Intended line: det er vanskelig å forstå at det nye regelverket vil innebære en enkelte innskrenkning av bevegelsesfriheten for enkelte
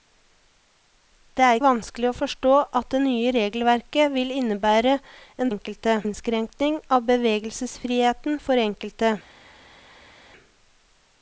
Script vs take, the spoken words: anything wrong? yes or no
no